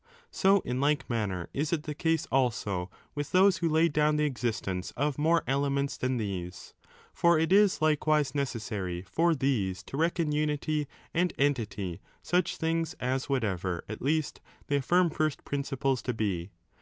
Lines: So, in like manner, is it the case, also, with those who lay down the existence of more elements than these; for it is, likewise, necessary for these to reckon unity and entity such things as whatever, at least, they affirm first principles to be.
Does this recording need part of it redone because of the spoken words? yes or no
no